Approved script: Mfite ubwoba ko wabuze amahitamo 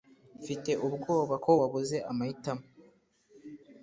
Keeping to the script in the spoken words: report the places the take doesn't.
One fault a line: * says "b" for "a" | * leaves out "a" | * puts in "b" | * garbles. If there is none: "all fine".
all fine